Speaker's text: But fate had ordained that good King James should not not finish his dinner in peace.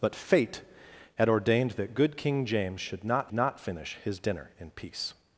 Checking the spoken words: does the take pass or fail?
pass